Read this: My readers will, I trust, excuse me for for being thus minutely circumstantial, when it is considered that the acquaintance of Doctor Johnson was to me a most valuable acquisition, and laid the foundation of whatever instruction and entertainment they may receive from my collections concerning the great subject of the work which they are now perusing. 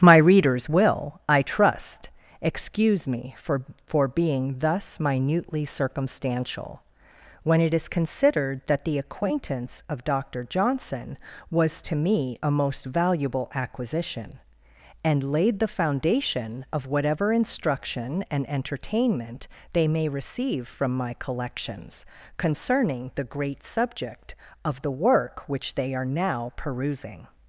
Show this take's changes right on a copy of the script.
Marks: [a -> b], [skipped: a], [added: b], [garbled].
My readers will, I trust, excuse me for for being thus minutely circumstantial, when it is considered that the acquaintance of Doctor Johnson was to me a most valuable acquisition, and laid the foundation of whatever instruction and entertainment they may receive from my collections concerning the great subject of the work which they are now perusing.